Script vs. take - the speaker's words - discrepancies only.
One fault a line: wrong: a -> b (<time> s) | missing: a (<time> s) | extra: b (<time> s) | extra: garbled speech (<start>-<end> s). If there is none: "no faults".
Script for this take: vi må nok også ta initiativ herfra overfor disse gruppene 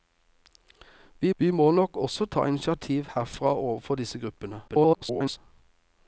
extra: vi (1.4 s)
extra: garbled speech (4.7-5.4 s)